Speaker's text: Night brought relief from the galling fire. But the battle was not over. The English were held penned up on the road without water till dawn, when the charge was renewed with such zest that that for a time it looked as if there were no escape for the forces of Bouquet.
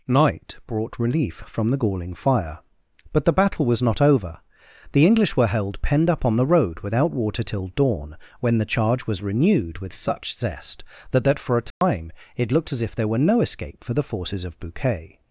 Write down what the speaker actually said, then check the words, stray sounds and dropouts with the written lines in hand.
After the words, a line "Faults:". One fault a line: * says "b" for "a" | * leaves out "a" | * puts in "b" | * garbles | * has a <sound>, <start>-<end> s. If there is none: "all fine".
Night brought relief from the galling fire. But the battle was not over. The English were held penned up on the road without water till dawn, when the charge was renewed with such zest that that for a time it looked as if there were no escape for the forces of Bouquet.
Faults:
* has a dropout, 11.7-11.8 s